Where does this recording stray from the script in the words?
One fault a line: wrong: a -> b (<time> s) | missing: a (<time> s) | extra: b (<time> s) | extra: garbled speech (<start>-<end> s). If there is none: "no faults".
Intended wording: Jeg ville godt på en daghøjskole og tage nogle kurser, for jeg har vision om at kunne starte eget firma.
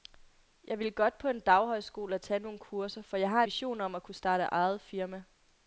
no faults